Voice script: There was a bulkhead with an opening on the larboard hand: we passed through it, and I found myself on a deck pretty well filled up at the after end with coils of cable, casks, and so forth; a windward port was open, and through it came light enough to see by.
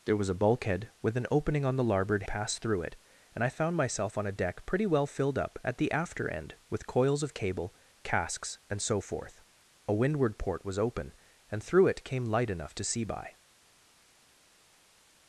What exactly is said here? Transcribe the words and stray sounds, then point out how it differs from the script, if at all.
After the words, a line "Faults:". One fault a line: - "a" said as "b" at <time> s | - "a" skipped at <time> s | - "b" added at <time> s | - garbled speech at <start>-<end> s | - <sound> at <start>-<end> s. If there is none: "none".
There was a bulkhead with an opening on the larboard passed through it, and I found myself on a deck pretty well filled up at the after end with coils of cable, casks, and so forth; a windward port was open, and through it came light enough to see by.
Faults:
- "hand we" skipped at 2.2 s